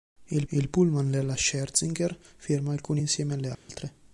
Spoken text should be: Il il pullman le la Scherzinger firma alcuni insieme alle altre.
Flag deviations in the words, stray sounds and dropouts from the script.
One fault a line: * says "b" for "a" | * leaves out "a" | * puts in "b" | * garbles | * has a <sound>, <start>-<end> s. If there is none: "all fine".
* has a dropout, 3.5-3.7 s